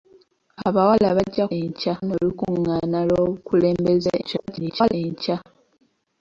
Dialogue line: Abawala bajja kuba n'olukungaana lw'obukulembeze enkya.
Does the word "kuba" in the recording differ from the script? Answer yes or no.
yes